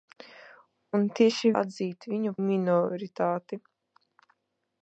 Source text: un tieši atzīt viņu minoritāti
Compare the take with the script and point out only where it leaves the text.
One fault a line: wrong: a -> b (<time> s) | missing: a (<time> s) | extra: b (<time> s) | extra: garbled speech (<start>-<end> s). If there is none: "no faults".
no faults